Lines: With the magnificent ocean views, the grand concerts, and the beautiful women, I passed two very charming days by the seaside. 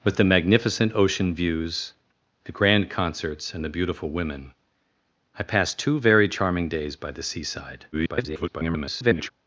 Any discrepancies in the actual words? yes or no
yes